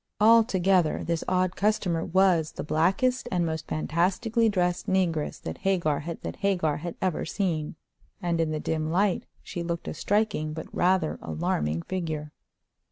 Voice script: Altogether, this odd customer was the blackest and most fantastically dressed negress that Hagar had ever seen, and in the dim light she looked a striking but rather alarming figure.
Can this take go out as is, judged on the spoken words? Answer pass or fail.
fail